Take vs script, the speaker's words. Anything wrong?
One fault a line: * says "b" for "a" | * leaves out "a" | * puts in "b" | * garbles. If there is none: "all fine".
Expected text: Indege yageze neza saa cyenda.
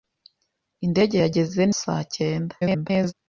* leaves out "neza"
* garbles